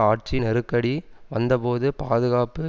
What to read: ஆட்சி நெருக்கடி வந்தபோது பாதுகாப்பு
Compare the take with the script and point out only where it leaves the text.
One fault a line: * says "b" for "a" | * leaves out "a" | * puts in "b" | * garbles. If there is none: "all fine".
all fine